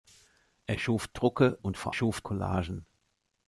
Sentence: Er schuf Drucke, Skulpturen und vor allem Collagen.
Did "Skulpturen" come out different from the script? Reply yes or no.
yes